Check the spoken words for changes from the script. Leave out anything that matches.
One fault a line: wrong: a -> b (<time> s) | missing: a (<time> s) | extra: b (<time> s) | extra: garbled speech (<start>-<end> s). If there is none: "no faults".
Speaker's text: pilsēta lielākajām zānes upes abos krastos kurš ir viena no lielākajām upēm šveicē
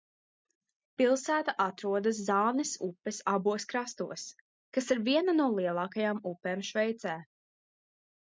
wrong: lielākajām -> atrodas (1.6 s)
wrong: kurš -> kas (4.8 s)